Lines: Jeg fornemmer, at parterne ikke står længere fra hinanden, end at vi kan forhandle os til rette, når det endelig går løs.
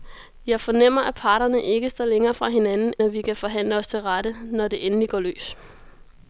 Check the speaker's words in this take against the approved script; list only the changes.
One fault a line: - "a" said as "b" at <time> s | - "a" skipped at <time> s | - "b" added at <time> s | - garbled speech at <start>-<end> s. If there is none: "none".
- "end" skipped at 2.9 s